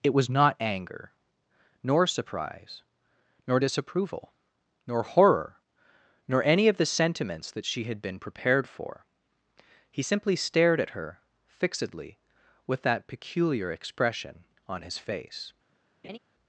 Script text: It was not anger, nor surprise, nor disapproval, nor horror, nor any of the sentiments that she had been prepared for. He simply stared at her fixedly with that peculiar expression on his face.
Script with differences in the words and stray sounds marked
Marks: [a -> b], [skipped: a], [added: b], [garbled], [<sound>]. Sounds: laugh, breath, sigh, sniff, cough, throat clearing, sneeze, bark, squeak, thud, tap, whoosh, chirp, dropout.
It was not anger, nor surprise, nor disapproval, nor horror, nor any of the sentiments that she had been prepared for. He simply stared at her fixedly with that peculiar expression on his face. [laugh]